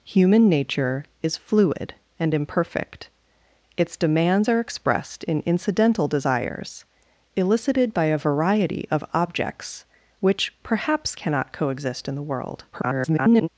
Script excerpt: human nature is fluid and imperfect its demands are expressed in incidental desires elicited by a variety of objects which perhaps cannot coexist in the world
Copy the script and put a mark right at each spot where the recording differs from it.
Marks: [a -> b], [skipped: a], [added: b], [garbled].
human nature is fluid and imperfect its demands are expressed in incidental desires elicited by a variety of objects which perhaps cannot coexist in the world [garbled]